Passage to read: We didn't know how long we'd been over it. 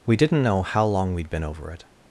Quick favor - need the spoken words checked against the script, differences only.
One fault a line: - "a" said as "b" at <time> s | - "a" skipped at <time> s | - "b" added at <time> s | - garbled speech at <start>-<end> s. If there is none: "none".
none